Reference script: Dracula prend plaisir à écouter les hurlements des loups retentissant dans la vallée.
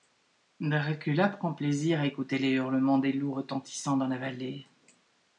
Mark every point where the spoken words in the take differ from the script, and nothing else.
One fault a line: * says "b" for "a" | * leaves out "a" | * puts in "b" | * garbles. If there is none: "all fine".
all fine